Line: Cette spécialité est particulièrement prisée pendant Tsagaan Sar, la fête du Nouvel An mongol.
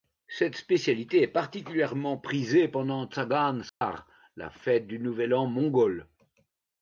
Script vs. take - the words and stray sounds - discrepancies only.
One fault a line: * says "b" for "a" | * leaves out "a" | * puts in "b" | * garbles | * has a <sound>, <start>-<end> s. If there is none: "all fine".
* has a dropout, 3.7-3.8 s